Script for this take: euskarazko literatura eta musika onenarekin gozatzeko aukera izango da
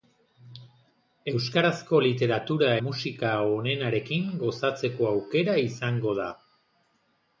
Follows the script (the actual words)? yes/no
no